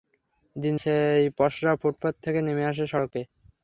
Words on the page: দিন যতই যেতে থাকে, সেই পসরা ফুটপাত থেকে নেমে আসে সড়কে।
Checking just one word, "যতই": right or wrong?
wrong